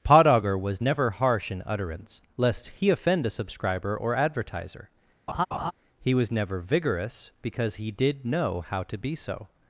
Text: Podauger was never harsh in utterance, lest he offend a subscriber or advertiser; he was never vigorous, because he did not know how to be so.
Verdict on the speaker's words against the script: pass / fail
fail